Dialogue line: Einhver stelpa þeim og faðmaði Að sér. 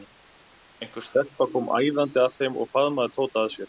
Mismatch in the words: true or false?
true